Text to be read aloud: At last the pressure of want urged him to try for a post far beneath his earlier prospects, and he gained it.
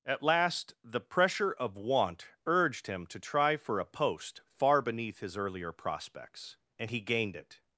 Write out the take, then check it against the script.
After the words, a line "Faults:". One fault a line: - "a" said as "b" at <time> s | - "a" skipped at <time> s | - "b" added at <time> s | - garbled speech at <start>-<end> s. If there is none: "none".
At last the pressure of want urged him to try for a post far beneath his earlier prospects, and he gained it.
Faults:
none